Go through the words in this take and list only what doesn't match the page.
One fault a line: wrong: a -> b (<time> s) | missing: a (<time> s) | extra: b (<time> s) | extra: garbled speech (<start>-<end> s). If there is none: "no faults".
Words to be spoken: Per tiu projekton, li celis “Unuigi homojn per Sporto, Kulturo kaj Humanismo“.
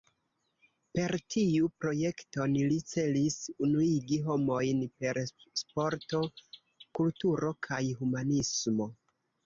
no faults